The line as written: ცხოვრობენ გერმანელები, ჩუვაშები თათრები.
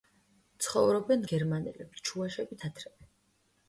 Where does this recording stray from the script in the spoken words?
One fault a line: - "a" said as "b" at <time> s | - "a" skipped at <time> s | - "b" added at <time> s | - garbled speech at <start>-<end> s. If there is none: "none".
none